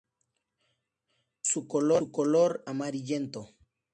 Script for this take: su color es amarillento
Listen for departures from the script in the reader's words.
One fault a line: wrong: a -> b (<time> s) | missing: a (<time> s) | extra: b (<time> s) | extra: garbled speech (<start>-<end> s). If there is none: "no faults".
missing: es (2.7 s)